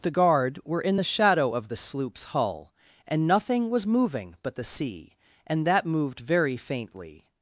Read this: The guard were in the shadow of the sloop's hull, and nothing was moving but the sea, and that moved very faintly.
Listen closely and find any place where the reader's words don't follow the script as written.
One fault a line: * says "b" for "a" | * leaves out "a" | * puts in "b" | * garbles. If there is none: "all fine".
all fine